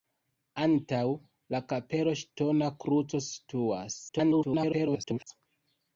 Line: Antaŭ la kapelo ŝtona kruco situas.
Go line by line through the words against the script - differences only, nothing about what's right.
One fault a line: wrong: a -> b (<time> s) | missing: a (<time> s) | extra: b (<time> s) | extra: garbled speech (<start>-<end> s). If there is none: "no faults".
extra: garbled speech (4.1-5.3 s)